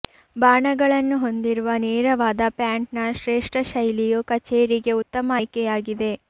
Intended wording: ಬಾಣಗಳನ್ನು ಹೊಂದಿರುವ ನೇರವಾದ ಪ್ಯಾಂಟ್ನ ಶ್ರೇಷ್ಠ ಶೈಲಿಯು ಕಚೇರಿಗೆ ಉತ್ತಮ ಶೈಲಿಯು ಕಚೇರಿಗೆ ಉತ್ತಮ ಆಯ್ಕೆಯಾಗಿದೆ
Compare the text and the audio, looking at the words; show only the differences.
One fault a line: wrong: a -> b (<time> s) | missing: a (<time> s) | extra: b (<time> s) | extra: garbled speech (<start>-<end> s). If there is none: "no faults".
missing: ಶೈಲಿಯು ಕಚೇರಿಗೆ ಉತ್ತಮ (5.4 s)